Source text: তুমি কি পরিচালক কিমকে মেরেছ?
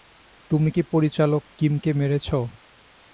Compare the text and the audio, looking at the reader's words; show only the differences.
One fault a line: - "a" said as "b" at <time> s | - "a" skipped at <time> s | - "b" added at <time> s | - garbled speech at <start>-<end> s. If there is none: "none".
none